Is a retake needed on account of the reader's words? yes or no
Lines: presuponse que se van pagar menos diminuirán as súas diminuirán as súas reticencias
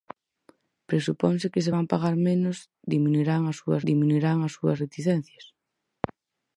no